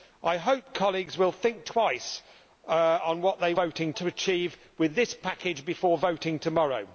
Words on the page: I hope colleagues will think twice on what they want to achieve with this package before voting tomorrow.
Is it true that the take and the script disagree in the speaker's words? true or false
true